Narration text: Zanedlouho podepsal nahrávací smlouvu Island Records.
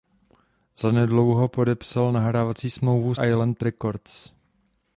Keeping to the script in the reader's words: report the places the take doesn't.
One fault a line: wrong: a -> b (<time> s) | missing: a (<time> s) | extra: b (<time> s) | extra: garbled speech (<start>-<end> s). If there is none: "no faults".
no faults